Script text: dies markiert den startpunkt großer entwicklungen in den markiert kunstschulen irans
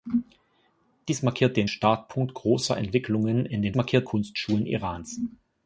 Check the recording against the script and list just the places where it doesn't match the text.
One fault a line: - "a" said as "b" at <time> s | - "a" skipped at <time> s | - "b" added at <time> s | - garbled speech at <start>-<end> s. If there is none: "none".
none